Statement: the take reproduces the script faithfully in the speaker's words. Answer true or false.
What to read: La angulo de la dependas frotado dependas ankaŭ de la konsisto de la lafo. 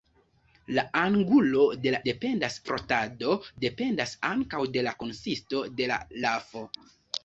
true